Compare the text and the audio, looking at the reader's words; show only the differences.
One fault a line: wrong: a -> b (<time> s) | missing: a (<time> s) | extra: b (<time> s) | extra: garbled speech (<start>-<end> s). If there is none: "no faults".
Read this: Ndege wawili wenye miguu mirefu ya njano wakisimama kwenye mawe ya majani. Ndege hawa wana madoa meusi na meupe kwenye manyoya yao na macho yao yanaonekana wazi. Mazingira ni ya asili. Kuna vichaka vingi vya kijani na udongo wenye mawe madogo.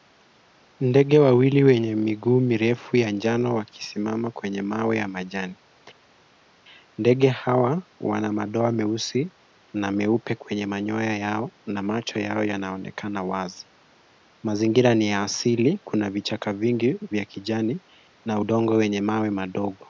no faults